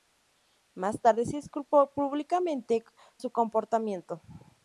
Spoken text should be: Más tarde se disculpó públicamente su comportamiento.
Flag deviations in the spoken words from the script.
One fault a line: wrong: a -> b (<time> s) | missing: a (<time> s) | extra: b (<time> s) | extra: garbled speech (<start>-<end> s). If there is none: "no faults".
no faults